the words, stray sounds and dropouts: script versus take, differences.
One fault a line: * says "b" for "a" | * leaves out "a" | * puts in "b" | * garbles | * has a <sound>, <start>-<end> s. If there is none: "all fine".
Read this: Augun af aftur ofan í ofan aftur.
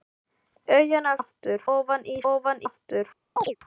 * has a chirp, 3.4-3.6 s